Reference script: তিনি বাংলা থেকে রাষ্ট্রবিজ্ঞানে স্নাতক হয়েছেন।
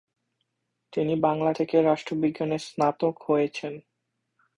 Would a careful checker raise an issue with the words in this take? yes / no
no